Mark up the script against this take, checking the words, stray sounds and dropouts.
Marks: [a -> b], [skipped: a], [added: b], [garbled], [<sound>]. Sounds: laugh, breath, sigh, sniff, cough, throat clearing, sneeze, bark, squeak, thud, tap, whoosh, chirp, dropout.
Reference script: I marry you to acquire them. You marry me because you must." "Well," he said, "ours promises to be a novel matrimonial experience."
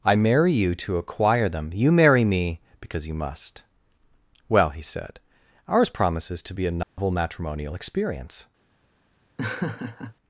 I marry you to acquire them. You marry me because you must." "Well," he said, "ours promises to be a novel [dropout] matrimonial experience." [laugh]